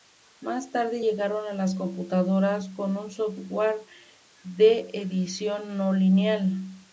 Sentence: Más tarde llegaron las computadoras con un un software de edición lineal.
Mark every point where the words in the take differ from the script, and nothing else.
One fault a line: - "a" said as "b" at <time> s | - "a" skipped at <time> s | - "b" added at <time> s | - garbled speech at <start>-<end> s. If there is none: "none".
- "un" skipped at 3.1 s
- "no" added at 5.8 s